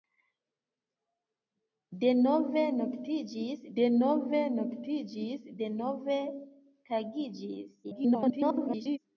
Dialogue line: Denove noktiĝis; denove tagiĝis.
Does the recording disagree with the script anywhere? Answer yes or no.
yes